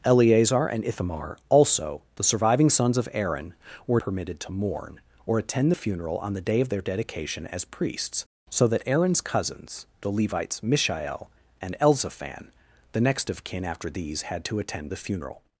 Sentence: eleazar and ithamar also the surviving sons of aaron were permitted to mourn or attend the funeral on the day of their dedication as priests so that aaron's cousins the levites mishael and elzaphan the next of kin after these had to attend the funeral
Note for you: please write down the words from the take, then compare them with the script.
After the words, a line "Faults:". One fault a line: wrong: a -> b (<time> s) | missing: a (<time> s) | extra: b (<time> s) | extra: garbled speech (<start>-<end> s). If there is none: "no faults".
eleazar and ithamar also the surviving sons of aaron were permitted to mourn or attend the funeral on the day of their dedication as priests so that aaron's cousins the levites mishael and elzaphan the next of kin after these had to attend the funeral
Faults:
no faults